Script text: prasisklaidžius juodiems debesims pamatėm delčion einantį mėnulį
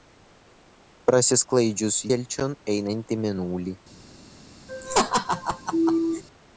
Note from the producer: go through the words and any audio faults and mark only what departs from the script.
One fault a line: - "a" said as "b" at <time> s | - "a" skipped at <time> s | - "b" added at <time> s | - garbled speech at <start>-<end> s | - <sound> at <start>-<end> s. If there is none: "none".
- "juodiems debesims pamatėm" skipped at 2.0 s
- laugh at 4.7-6.2 s